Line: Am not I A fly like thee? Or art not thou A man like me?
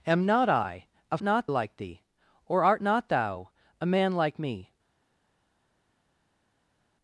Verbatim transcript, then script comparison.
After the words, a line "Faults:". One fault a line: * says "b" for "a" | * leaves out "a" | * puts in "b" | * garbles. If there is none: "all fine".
Am not I A not like thee? Or art not thou A man like me?
Faults:
* says "not" for "fly"